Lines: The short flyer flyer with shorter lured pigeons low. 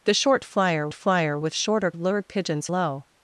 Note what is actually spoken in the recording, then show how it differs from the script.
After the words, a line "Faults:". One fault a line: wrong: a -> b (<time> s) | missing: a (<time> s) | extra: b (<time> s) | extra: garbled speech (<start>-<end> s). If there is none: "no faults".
The short flyer flyer with shorter lured pigeons low.
Faults:
no faults